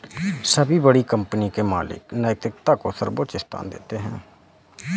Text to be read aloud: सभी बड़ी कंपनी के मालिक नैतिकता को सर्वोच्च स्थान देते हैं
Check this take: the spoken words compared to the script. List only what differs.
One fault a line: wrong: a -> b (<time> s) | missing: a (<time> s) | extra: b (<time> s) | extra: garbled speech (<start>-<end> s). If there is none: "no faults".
no faults